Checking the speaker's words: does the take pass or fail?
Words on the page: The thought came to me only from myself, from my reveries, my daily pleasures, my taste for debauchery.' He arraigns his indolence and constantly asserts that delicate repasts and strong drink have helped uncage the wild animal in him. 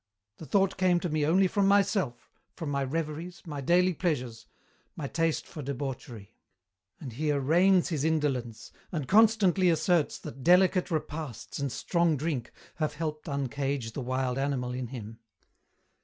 fail